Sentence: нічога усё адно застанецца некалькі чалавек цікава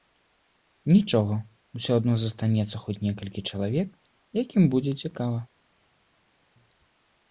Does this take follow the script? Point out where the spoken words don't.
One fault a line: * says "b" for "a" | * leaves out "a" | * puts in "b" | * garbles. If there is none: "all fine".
* puts in "хоць"
* puts in "якім будзе"